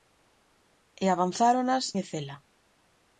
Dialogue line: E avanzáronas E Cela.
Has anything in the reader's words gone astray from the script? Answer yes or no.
no